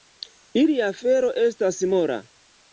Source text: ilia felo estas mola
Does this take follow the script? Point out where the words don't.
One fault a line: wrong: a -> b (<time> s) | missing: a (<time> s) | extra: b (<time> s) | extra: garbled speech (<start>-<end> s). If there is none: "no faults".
no faults